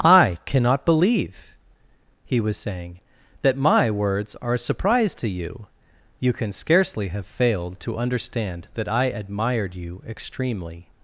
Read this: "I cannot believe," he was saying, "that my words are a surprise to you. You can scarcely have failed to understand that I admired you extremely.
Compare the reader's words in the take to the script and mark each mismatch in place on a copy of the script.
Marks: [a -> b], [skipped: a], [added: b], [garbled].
"I cannot believe," he was saying, "that my words are a surprise to you. You can scarcely have failed to understand that I admired you extremely.